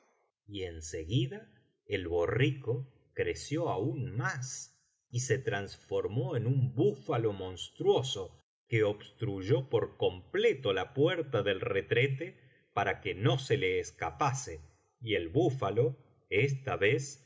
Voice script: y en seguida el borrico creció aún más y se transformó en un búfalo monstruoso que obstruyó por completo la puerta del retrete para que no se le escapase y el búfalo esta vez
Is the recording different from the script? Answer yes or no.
no